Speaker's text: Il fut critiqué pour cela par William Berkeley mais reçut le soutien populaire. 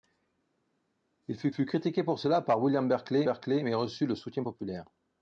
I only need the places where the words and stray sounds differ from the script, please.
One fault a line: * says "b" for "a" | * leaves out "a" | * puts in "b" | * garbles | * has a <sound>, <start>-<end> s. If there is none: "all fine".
* puts in "fut"
* puts in "Berkeley"